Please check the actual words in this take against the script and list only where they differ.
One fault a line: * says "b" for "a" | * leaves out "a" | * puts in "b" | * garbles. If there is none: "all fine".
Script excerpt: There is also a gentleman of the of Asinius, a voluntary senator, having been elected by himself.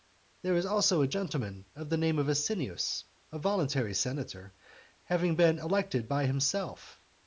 * puts in "name"